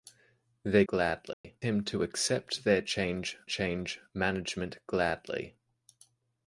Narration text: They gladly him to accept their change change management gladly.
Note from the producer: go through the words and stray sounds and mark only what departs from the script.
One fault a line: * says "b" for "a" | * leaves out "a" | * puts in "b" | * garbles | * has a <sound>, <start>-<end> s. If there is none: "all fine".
* has a dropout, 1.3-1.4 s